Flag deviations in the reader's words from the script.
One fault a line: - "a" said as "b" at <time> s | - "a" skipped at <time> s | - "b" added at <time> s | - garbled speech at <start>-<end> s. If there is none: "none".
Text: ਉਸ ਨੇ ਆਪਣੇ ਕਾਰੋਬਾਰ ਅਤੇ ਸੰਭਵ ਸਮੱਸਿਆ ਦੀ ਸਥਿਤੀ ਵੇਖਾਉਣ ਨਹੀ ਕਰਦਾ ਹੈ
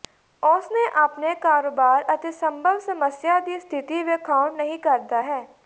none